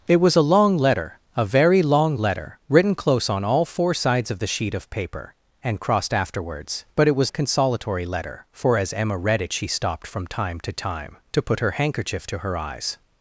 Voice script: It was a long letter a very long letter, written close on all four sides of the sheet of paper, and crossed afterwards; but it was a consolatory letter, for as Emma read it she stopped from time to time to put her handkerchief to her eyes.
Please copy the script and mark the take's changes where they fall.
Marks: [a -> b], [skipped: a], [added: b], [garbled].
It was a long letter a very long letter, written close on all four sides of the sheet of paper, and crossed afterwards; but it was a consolatory letter, for as Emma read it she stopped from time to time to put her handkerchief to her eyes.